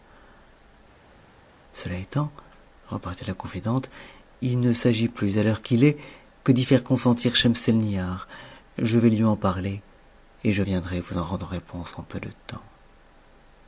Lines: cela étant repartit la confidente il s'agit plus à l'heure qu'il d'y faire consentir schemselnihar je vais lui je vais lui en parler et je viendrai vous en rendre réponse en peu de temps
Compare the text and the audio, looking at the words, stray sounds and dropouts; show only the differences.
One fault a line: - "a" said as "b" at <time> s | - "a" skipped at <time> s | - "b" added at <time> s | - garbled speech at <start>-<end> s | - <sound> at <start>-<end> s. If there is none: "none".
- "ne" added at 4.6 s
- "est que" added at 5.8 s
- "je vais lui" skipped at 9.2 s